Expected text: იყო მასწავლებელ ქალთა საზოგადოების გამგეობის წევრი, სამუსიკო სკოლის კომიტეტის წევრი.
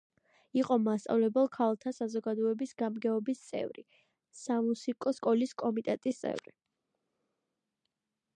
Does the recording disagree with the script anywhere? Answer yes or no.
no